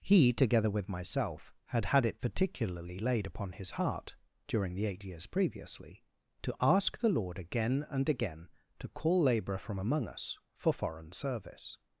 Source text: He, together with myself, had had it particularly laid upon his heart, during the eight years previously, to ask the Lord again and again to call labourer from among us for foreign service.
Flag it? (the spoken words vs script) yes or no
no